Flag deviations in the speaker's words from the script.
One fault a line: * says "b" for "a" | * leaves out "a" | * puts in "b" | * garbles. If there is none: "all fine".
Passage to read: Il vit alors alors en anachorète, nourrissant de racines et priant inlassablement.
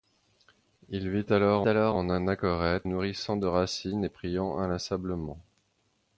all fine